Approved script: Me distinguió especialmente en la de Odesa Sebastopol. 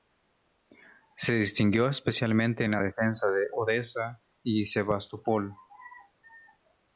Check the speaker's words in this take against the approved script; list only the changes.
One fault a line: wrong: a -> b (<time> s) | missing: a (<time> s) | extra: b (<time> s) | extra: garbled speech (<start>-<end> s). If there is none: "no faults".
wrong: Me -> Se (1.1 s)
extra: defensa (2.8 s)
extra: y (4.4 s)